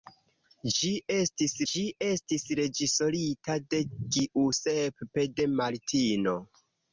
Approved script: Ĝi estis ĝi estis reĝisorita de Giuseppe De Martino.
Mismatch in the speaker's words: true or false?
false